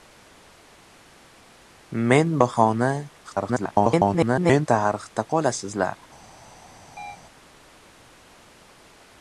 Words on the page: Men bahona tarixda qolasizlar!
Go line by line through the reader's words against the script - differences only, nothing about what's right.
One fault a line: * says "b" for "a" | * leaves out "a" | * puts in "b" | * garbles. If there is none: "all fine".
* garbles